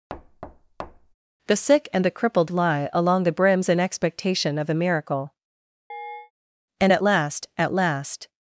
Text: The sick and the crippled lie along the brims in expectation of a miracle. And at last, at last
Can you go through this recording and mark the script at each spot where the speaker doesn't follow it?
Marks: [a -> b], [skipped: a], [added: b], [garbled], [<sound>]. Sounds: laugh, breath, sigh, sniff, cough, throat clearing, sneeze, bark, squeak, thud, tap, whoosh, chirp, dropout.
[thud] The sick and the crippled lie along the brims in expectation of a miracle. [chirp] And at last, at last